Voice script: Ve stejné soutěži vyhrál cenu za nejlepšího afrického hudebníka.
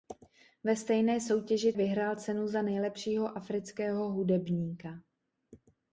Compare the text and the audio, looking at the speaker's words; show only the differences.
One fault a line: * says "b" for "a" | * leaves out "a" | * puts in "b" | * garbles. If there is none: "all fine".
all fine